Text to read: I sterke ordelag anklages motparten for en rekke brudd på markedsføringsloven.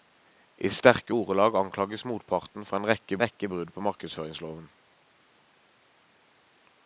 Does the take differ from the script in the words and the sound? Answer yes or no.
yes